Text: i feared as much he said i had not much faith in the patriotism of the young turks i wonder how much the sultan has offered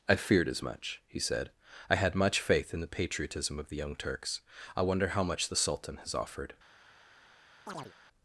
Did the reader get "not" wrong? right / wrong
wrong